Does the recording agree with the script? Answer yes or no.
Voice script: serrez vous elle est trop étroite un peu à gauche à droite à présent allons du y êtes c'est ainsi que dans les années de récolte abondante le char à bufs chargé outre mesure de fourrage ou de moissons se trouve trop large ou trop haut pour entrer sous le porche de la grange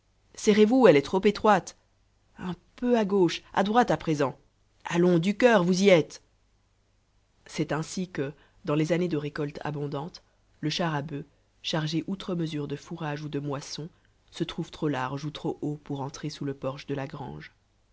no